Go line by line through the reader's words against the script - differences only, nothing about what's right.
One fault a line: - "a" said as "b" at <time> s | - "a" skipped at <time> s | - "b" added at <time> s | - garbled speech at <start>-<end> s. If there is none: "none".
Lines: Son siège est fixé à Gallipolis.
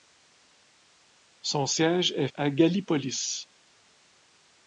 - "fixé" skipped at 2.3 s